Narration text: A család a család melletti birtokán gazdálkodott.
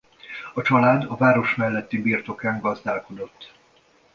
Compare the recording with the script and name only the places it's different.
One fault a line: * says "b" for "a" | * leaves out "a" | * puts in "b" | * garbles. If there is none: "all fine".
* says "város" for "család"